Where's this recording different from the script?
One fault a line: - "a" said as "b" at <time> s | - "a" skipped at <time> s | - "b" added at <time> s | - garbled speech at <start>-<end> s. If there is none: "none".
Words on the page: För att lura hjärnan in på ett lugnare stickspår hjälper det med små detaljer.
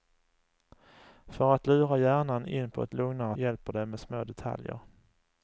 - "stickspår" skipped at 3.4 s